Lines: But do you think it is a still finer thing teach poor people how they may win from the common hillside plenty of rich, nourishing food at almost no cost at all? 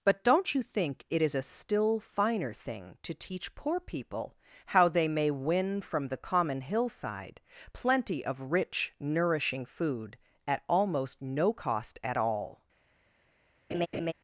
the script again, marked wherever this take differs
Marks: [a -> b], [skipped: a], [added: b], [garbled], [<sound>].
But [do -> don't] you think it is a still finer thing [added: to] teach poor people how they may win from the common hillside plenty of rich, nourishing food at almost no cost at all? [laugh]